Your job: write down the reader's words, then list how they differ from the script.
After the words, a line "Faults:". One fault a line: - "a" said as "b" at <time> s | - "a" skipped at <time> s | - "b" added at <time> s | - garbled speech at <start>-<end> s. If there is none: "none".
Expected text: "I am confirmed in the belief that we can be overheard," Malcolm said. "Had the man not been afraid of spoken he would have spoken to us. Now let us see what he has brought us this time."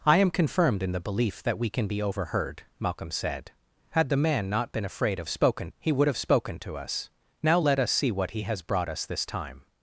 "I am confirmed in the belief that we can be overheard," Malcolm said. "Had the man not been afraid of spoken he would have spoken to us. Now let us see what he has brought us this time."
Faults:
none